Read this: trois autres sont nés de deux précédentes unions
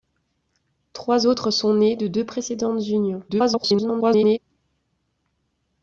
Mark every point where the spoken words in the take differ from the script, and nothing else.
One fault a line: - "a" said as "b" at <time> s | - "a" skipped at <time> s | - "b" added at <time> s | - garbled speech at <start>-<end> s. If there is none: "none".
- garbled speech at 3.3-4.4 s